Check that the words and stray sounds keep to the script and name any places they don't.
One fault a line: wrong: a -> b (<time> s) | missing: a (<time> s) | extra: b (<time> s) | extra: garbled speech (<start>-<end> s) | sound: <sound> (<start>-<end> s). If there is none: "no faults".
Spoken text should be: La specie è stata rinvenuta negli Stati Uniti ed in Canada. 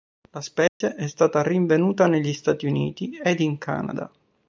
sound: dropout (0.7-0.8 s)